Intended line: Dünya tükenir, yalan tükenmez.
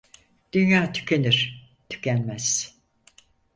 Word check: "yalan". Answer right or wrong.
wrong